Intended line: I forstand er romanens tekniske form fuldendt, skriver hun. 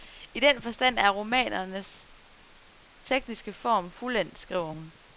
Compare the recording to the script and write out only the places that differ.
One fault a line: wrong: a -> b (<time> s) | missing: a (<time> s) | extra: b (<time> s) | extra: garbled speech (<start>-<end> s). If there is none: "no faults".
extra: den (0.4 s)